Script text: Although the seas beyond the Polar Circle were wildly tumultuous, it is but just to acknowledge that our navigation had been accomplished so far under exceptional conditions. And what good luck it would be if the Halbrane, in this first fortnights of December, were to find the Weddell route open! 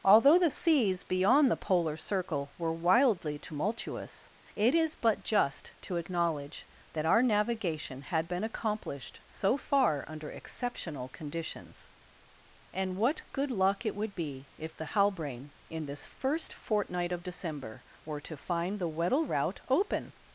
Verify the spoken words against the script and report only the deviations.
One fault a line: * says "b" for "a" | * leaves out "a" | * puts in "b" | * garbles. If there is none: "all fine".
* says "fortnight" for "fortnights"